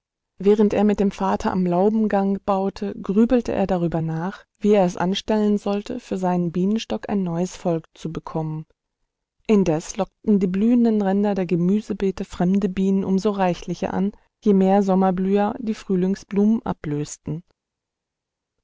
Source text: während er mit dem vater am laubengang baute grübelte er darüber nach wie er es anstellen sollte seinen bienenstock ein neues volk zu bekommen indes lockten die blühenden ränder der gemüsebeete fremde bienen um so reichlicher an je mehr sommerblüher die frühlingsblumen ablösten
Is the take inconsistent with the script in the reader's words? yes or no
yes